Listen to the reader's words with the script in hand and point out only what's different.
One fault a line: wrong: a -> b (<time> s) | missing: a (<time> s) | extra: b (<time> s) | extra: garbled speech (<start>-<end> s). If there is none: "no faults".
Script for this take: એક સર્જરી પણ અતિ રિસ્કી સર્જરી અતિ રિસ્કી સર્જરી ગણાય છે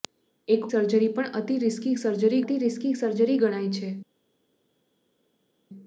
no faults